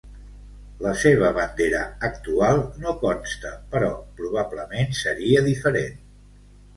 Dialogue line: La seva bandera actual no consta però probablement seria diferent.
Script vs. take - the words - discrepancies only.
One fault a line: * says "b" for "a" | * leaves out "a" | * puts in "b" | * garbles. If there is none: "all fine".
all fine